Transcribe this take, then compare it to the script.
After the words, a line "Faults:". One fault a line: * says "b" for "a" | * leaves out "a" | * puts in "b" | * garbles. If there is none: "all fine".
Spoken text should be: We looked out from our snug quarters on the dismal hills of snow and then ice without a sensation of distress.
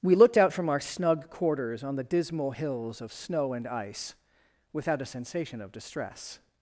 We looked out from our snug quarters on the dismal hills of snow and ice without a sensation of distress.
Faults:
* leaves out "then"